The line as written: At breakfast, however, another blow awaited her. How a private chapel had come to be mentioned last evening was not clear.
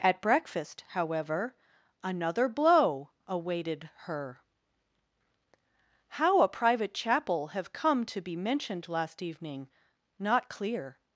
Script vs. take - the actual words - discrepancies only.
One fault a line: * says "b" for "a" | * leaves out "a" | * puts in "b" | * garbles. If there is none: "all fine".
* says "have" for "had"
* leaves out "was"